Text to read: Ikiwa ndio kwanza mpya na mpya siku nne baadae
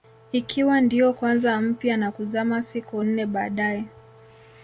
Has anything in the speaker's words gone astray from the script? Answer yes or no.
yes